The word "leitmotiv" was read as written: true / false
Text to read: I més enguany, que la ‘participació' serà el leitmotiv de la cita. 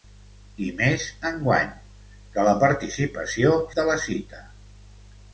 false